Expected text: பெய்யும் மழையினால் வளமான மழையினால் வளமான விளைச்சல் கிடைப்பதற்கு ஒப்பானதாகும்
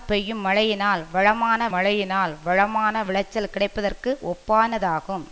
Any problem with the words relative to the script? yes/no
no